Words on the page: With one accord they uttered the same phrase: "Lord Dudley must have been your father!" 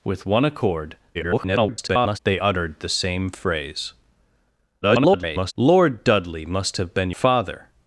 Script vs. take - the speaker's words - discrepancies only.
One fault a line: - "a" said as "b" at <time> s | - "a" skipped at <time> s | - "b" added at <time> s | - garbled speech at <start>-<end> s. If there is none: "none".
- garbled speech at 1.1-2.2 s
- garbled speech at 4.8-5.5 s
- "your" skipped at 7.1 s